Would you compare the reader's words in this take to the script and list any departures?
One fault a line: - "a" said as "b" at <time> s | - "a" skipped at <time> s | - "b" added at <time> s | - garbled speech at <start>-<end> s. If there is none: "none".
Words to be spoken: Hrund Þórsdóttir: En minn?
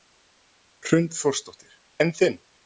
- "minn" said as "þinn" at 2.2 s